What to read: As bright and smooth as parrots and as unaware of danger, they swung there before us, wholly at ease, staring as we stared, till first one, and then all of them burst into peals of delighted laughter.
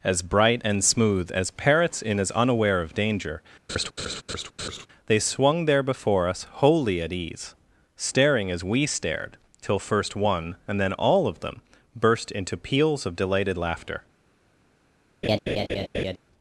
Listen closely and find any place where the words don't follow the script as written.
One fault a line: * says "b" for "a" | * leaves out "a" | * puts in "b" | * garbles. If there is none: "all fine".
* says "in" for "and"